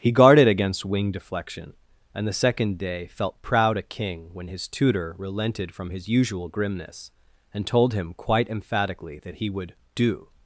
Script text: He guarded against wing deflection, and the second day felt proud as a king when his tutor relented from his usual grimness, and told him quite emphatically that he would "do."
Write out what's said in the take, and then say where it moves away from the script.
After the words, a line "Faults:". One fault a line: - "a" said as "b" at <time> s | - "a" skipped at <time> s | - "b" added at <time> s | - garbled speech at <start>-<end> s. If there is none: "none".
He guarded against wing deflection, and the second day felt proud a king when his tutor relented from his usual grimness, and told him quite emphatically that he would "do."
Faults:
- "as" skipped at 3.8 s